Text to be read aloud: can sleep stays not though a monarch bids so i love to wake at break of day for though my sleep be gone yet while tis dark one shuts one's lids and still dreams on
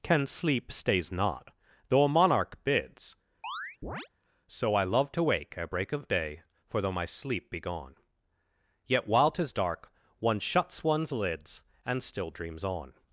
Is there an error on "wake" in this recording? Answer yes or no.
no